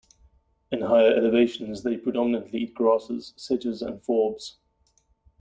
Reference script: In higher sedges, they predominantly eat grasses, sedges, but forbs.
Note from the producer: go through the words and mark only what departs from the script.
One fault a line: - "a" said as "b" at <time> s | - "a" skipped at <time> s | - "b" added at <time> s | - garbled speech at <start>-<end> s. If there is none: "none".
- "sedges" said as "elevations" at 1.1 s
- "but" said as "and" at 3.8 s